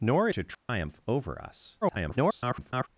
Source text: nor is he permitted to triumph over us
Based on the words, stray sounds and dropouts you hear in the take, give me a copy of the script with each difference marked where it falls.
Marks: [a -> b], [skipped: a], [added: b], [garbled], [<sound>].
nor [skipped: is he permitted] to triumph [dropout] over us [garbled]